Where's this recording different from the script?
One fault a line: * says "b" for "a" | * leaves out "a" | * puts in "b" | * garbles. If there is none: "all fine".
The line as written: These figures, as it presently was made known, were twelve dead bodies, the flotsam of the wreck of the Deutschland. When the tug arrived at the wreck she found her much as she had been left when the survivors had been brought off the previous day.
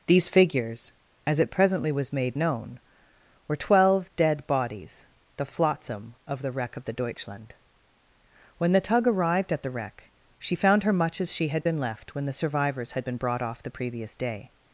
all fine